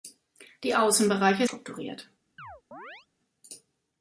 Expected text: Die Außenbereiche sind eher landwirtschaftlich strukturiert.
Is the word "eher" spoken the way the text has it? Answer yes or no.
no